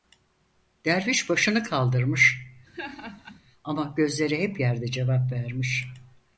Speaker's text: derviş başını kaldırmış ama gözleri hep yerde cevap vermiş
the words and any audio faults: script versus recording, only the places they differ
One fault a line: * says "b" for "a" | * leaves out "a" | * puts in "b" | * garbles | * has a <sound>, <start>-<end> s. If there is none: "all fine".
* has a laugh, 2.7-3.4 s